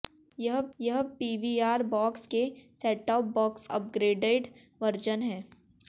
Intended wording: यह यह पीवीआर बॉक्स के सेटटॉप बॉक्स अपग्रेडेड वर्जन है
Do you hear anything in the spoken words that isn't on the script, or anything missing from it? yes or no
no